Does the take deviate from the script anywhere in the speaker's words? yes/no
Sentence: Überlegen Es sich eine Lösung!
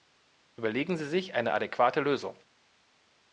yes